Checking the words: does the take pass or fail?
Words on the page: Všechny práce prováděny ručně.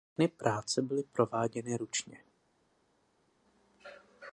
fail